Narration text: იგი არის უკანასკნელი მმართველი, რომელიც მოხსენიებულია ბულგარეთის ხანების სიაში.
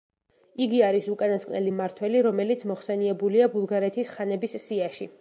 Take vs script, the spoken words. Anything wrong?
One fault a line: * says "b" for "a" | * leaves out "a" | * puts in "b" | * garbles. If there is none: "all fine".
all fine